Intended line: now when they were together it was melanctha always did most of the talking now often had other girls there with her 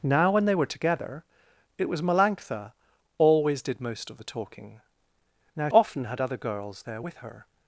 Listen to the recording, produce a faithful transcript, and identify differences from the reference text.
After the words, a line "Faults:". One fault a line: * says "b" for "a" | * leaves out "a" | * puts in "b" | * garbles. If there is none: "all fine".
now when they were together it was melanctha always did most of the talking now often had other girls there with her
Faults:
all fine